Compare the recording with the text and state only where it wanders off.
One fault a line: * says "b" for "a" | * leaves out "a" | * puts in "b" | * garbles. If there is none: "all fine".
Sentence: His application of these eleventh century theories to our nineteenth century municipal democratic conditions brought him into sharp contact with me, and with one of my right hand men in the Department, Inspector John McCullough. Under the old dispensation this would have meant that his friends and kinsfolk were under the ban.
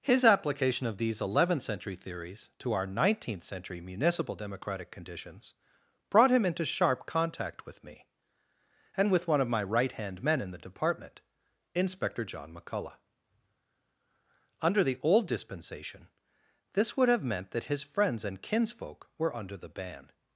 all fine